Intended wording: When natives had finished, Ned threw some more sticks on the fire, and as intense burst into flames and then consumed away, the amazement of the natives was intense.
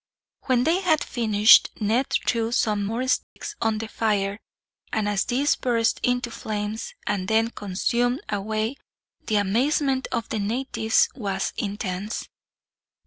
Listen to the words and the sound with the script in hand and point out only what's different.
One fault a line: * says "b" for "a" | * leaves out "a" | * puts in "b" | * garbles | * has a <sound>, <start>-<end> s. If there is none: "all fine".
* says "they" for "natives"
* has a dropout, 3.2-3.4 s
* says "these" for "intense"